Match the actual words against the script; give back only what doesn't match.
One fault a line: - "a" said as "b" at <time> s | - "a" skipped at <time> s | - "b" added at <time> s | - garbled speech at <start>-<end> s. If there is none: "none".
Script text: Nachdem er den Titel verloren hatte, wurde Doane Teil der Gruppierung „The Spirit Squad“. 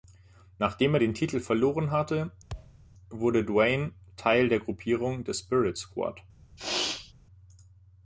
none